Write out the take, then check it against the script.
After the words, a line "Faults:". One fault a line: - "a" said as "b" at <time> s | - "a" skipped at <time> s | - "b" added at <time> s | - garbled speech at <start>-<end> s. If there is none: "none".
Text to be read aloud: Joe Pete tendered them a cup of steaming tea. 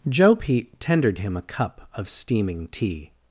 Joe Pete tendered him a cup of steaming tea.
Faults:
- "them" said as "him" at 1.2 s